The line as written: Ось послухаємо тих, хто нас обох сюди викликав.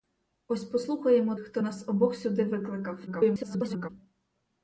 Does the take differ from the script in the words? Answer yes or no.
yes